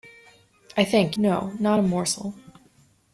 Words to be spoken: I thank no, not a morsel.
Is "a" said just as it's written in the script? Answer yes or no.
yes